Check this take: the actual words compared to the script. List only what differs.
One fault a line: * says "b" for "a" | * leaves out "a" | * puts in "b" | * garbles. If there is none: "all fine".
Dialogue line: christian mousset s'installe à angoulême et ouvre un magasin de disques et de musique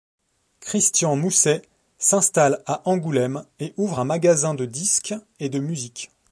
all fine